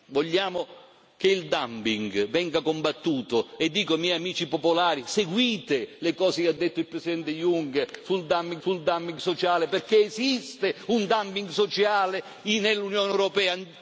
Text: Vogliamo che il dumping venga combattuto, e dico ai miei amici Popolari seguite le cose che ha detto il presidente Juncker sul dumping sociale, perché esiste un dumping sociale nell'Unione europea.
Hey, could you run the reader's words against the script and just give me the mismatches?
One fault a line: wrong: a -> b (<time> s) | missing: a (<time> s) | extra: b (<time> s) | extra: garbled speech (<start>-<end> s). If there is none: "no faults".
extra: sul dumping (8.6 s)